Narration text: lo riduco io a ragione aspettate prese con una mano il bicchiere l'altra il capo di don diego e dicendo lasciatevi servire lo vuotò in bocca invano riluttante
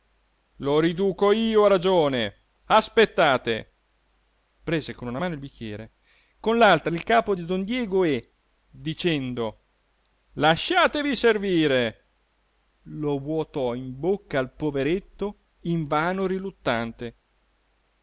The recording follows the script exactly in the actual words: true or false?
false